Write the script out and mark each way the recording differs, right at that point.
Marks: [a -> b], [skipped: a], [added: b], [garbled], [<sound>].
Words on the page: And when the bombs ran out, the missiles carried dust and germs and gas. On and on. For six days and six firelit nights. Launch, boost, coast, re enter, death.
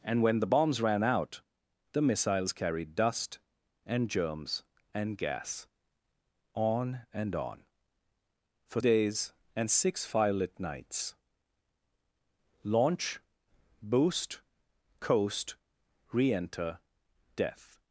And when the bombs ran out, the missiles carried dust and germs and gas. On and on. For [skipped: six] days and six firelit nights. Launch, boost, coast, re enter, death.